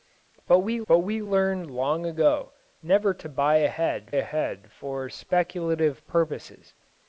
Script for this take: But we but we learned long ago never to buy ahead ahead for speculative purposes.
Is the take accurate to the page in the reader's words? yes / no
yes